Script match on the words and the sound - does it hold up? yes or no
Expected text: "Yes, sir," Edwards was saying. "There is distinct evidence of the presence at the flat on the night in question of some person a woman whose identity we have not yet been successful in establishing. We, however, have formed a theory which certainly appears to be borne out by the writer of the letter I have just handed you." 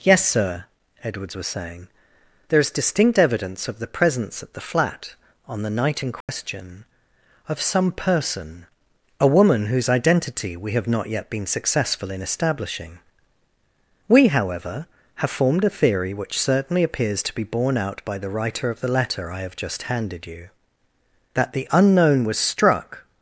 no